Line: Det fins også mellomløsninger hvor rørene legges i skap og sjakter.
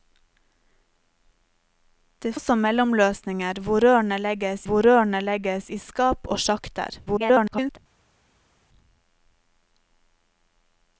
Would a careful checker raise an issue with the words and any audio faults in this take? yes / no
yes